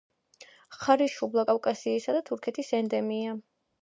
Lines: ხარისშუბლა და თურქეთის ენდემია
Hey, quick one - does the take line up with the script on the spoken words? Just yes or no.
no